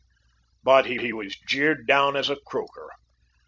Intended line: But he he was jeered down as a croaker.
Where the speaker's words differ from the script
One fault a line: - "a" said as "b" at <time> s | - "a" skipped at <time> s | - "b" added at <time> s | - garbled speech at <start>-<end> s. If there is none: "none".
none